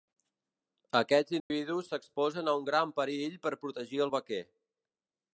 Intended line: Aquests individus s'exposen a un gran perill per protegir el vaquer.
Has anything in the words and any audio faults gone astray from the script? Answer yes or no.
yes